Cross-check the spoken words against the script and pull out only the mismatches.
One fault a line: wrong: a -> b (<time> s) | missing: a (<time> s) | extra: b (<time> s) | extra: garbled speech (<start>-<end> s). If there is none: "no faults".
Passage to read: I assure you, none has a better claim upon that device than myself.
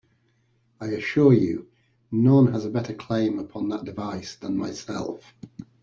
no faults